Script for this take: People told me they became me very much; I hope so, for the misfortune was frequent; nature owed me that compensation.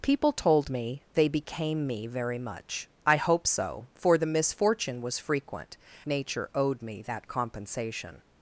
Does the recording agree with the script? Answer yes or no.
yes